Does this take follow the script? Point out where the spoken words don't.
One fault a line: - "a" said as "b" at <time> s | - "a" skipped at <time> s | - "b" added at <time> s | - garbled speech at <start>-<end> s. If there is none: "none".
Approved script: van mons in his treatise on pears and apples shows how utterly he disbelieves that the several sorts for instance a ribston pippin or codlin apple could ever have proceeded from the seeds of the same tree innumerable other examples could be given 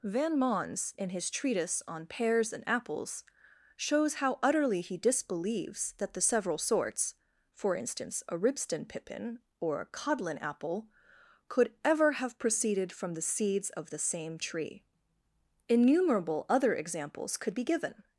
- "a" added at 9.8 s